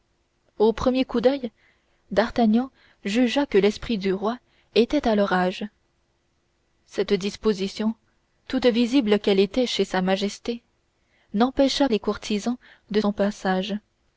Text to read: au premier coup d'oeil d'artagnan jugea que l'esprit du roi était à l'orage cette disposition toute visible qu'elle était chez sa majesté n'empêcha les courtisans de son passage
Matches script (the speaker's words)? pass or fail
pass